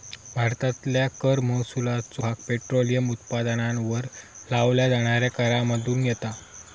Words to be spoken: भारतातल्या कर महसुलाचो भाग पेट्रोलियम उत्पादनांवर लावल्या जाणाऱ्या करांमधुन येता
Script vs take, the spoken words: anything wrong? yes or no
no